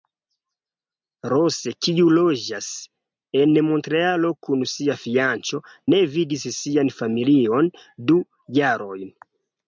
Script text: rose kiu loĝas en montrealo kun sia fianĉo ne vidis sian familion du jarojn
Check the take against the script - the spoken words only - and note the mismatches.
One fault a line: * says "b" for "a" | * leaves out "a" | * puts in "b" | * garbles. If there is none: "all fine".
all fine